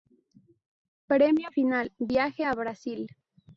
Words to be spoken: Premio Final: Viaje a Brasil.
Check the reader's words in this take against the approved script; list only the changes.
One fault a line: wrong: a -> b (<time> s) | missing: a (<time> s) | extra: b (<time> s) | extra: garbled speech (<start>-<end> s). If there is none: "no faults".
no faults